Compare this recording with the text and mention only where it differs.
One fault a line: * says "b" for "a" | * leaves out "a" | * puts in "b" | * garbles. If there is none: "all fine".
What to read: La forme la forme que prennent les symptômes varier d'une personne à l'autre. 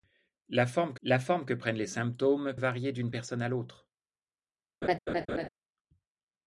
all fine